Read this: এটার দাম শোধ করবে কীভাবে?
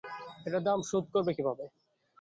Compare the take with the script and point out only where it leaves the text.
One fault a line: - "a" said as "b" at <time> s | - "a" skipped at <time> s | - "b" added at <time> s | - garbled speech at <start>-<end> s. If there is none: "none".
none